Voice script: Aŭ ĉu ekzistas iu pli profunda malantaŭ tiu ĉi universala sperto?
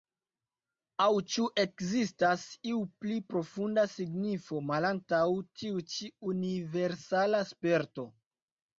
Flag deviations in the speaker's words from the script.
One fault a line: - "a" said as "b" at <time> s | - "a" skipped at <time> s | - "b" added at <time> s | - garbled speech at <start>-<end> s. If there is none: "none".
- "signifo" added at 3.9 s